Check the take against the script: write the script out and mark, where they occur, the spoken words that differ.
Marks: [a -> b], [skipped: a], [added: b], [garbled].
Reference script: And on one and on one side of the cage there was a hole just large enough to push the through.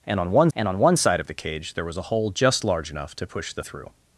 And on one and on one side of the cage there was a hole just large enough to push the through.